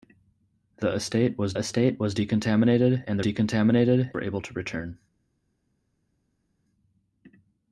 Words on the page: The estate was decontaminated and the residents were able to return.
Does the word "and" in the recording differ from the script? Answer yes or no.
no